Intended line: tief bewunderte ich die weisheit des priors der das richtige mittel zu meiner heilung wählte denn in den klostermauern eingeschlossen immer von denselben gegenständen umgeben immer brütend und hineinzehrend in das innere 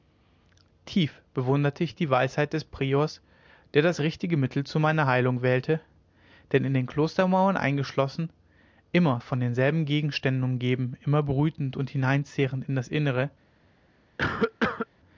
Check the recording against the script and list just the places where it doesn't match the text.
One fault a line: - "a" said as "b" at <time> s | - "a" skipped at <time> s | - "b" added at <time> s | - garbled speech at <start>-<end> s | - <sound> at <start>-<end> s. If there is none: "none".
- cough at 14.2-14.9 s